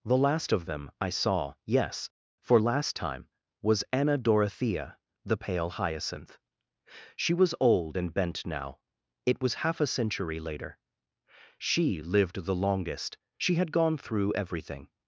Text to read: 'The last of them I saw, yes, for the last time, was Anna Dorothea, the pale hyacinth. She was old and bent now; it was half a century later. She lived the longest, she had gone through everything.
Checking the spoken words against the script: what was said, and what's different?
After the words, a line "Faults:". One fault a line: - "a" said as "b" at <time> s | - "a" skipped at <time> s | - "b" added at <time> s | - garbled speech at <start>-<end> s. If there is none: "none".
'The last of them I saw, yes, for last time, was Anna Dorothea, the pale hyacinth. She was old and bent now; it was half a century later. She lived the longest, she had gone through everything.
Faults:
- "the" skipped at 2.6 s